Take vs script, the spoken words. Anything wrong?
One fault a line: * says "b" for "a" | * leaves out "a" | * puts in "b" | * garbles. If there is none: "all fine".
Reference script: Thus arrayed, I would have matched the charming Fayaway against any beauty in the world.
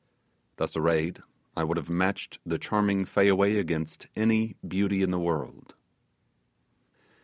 all fine